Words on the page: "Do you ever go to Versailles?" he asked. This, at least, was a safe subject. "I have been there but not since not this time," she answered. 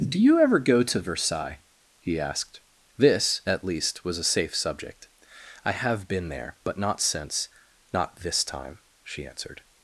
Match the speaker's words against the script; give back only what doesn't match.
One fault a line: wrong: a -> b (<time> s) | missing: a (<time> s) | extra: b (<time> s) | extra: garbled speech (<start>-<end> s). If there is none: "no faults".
no faults